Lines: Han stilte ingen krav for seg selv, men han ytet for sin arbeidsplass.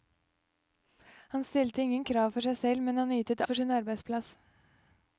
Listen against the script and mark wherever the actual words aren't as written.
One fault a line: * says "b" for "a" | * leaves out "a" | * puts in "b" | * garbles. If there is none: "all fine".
all fine